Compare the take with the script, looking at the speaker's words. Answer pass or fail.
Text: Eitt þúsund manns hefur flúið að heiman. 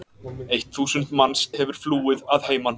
pass